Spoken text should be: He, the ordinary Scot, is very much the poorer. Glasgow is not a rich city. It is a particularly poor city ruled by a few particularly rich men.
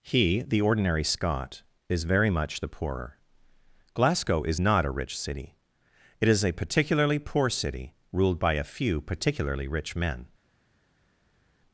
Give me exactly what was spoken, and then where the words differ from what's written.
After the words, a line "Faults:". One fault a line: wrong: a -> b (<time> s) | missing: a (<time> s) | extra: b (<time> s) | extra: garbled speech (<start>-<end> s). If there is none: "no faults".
He, the ordinary Scot, is very much the poorer. Glasgow is not a rich city. It is a particularly poor city ruled by a few particularly rich men.
Faults:
no faults